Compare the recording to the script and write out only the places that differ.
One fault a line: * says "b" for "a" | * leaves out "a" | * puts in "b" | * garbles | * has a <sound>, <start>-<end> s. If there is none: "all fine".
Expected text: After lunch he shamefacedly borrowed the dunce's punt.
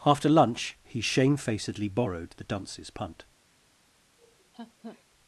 * has a laugh, 4.2-5.0 s